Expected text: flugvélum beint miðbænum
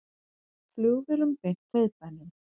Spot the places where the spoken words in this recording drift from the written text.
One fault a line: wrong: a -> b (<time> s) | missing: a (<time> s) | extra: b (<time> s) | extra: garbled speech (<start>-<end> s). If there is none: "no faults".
no faults